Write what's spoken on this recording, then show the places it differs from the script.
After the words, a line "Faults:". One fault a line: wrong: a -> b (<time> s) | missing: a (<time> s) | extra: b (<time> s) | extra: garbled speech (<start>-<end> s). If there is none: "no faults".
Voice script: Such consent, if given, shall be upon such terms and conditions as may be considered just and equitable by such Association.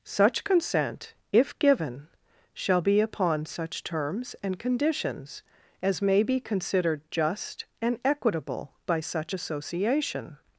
Such consent, if given, shall be upon such terms and conditions as may be considered just and equitable by such Association.
Faults:
no faults